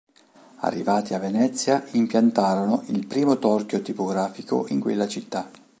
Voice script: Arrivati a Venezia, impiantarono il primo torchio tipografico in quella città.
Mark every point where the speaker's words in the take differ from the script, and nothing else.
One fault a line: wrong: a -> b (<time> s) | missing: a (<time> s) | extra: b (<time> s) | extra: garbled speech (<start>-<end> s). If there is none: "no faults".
no faults